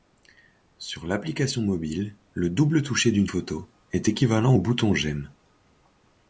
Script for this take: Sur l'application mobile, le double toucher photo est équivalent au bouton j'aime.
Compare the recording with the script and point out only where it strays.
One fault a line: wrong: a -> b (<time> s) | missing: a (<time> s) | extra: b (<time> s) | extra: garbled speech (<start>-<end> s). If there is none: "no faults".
extra: d'une (3.1 s)